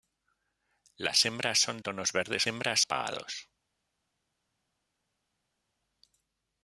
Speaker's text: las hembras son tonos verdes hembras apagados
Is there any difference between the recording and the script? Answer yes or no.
no